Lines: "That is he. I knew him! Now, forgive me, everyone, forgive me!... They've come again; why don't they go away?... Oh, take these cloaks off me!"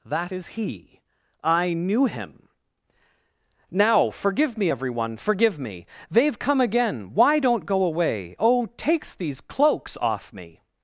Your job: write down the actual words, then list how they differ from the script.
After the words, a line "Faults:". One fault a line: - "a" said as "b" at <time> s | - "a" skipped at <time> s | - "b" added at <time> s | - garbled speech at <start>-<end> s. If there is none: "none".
"That is he. I knew him! Now, forgive me, everyone, forgive me!... They've come again; why don't go away?... Oh, takes these cloaks off me!"
Faults:
- "they" skipped at 7.7 s
- "take" said as "takes" at 8.8 s